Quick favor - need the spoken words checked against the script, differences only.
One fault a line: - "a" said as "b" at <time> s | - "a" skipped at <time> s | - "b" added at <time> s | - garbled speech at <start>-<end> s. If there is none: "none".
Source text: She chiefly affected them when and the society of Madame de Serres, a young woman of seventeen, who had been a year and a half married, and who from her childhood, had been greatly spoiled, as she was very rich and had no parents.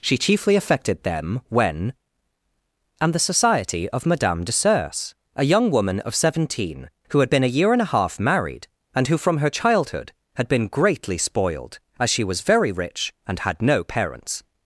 none